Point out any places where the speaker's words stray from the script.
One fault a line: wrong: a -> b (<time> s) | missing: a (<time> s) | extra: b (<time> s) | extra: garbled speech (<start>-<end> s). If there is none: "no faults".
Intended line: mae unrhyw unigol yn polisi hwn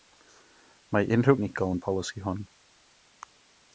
no faults